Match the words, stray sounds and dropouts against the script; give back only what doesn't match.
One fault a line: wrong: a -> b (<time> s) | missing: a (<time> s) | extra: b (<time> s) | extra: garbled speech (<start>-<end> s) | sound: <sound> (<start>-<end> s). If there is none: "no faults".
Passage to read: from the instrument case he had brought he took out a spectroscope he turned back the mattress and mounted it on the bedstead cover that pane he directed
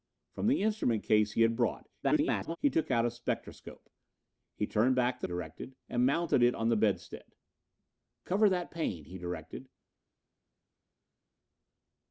extra: garbled speech (2.0-2.6 s)
wrong: mattress -> directed (5.2 s)